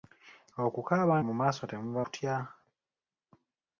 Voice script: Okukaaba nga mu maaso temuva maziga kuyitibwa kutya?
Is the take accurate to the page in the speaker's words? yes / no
no